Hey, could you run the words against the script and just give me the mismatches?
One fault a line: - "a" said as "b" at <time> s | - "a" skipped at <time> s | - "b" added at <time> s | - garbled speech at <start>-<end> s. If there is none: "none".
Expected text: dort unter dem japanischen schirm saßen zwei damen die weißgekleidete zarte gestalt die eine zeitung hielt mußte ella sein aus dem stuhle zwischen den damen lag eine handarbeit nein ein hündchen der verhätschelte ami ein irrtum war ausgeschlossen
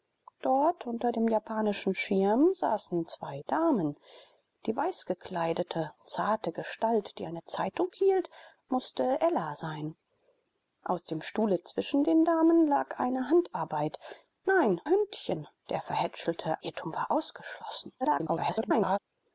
- "ein" skipped at 14.8 s
- "ami ein" skipped at 16.6 s
- garbled speech at 18.0-19.0 s